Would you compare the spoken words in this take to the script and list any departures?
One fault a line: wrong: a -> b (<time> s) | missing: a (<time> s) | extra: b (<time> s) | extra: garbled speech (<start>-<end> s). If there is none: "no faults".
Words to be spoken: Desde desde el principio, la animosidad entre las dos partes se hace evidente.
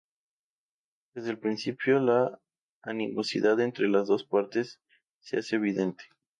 missing: desde (1.3 s)